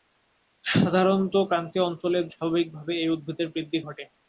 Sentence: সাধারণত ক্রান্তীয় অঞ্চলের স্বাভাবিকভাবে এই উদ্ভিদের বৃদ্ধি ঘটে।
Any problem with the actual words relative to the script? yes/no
no